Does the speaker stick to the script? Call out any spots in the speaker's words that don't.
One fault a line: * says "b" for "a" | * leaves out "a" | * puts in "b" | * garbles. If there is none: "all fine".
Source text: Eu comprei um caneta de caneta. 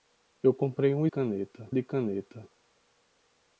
all fine